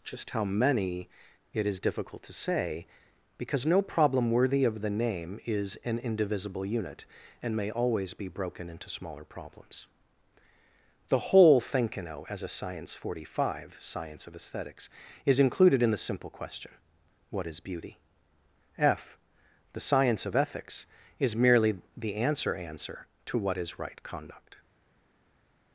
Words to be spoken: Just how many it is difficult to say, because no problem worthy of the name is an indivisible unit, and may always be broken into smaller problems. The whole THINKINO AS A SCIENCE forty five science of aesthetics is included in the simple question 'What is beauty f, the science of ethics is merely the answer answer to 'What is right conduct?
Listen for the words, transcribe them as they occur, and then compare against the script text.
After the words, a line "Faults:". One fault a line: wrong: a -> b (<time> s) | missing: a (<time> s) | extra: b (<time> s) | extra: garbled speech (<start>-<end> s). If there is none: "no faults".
Just how many it is difficult to say, because no problem worthy of the name is an indivisible unit, and may always be broken into smaller problems. The whole THINKINO AS A SCIENCE forty five science of aesthetics is included in the simple question 'What is beauty f, the science of ethics is merely the answer answer to 'What is right conduct?
Faults:
no faults